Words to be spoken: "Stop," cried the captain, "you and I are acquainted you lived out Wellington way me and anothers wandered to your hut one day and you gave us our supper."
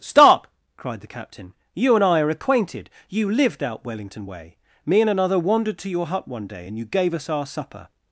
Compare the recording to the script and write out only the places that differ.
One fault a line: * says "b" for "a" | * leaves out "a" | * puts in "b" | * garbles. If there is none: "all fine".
* says "another" for "anothers"